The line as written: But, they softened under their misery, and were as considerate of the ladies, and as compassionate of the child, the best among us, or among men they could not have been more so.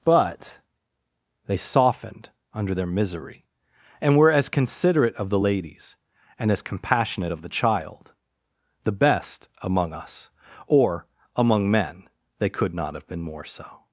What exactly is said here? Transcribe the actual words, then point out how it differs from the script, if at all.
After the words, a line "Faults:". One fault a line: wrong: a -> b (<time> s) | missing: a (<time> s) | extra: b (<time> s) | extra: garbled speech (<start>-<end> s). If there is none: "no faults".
But, they softened under their misery, and were as considerate of the ladies, and as compassionate of the child, the best among us, or among men they could not have been more so.
Faults:
no faults